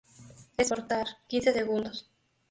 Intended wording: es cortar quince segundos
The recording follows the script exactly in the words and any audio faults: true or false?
true